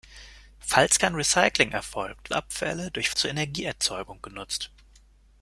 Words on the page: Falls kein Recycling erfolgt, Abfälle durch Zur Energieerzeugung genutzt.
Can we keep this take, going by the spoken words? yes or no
yes